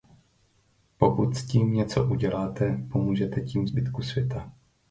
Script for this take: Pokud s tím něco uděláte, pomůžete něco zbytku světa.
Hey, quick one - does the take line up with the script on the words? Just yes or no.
no